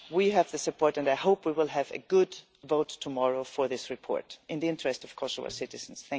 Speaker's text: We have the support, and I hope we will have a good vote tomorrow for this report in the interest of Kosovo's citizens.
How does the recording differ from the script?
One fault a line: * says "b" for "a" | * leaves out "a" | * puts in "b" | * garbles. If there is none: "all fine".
all fine